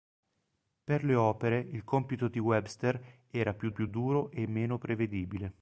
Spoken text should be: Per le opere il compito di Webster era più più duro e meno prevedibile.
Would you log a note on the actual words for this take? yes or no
no